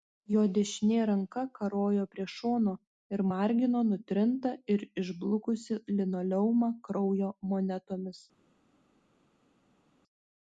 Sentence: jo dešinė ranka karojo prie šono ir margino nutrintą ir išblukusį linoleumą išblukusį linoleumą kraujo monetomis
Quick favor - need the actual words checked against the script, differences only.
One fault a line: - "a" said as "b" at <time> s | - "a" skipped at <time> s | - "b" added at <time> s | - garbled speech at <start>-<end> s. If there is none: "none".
- "išblukusį linoleumą" skipped at 6.7 s